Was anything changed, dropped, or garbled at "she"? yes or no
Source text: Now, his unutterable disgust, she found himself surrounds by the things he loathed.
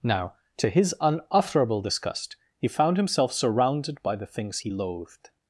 yes